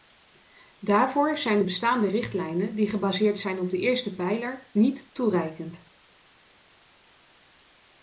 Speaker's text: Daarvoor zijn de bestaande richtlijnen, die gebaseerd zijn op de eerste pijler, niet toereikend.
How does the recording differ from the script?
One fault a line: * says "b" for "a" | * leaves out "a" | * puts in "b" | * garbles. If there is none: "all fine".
all fine